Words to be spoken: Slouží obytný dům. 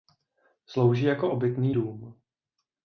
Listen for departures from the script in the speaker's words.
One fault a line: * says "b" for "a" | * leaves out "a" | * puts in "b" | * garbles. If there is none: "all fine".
* puts in "jako"